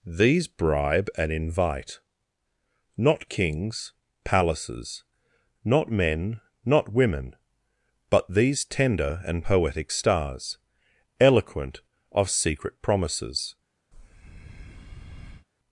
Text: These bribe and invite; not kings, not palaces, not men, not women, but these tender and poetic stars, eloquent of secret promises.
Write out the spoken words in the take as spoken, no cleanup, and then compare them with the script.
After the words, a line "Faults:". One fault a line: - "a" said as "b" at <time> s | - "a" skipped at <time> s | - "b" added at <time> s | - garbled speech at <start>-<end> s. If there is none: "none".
These bribe and invite; not kings, palaces, not men, not women, but these tender and poetic stars, eloquent of secret promises.
Faults:
- "not" skipped at 3.9 s